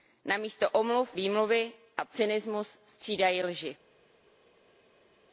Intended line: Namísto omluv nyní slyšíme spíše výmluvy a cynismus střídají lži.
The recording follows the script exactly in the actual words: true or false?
false